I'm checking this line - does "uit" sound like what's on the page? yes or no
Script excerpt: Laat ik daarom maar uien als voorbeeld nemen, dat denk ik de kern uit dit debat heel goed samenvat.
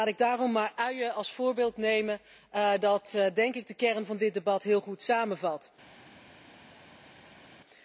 no